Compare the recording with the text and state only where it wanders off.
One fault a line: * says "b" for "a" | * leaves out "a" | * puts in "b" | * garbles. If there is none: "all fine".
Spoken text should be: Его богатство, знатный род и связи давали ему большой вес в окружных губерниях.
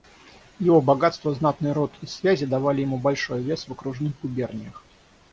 all fine